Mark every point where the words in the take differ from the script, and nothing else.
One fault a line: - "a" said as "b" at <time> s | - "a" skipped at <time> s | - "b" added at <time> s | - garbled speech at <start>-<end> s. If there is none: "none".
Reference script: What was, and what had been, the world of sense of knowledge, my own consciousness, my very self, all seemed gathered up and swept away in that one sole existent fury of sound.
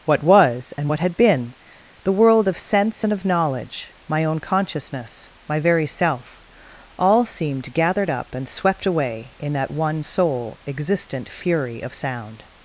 - "and" added at 3.0 s